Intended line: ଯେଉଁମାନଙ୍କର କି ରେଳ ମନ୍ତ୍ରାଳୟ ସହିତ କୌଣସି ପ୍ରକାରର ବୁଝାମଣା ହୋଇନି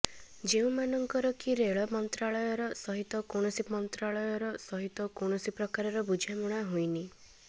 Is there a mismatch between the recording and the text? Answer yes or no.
yes